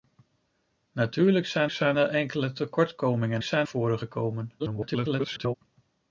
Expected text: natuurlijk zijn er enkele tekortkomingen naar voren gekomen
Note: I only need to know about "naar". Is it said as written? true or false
false